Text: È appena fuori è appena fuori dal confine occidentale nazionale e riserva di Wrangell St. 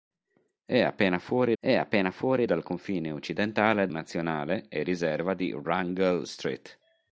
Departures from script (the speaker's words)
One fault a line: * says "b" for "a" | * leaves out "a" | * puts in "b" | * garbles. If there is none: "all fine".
all fine